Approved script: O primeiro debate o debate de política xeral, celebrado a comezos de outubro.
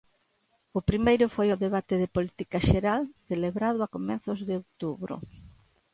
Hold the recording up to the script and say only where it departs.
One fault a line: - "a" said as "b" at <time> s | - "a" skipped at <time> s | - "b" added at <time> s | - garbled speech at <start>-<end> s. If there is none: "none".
- "debate" said as "foi" at 1.4 s